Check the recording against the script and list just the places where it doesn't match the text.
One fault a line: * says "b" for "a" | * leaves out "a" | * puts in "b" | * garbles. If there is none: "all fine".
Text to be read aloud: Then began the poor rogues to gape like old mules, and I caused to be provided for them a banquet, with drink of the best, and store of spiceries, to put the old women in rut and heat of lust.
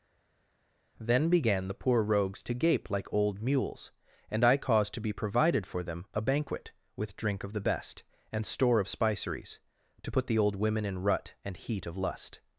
all fine